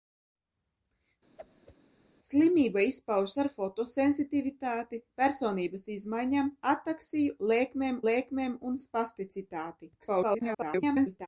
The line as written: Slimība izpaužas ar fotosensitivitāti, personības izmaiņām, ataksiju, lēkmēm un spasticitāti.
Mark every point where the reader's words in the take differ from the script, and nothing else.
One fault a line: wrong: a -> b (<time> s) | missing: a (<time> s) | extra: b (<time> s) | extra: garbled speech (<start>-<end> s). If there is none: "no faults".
extra: lēkmēm (8.1 s)
extra: garbled speech (10.0-11.3 s)